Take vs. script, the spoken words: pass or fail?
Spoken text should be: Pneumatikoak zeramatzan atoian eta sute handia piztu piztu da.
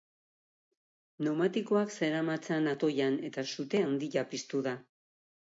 fail